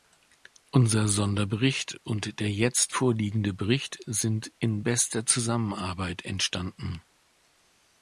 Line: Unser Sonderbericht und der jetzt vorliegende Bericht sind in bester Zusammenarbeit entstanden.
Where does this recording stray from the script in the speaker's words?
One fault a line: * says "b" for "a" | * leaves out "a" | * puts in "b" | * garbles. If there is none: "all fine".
all fine